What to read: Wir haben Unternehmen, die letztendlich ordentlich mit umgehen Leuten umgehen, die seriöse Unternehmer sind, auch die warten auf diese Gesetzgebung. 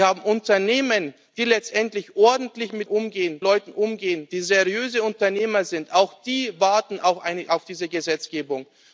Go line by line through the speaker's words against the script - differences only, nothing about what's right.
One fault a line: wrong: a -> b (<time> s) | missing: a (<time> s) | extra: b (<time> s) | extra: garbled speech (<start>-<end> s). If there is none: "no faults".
no faults